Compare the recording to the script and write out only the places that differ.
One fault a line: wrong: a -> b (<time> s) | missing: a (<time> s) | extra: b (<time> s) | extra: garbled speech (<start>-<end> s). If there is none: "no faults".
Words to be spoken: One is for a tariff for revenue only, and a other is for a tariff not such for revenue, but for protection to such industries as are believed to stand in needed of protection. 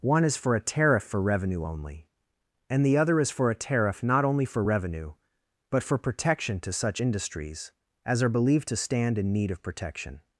wrong: a -> the (2.9 s)
wrong: such -> only (4.2 s)
wrong: needed -> need (9.3 s)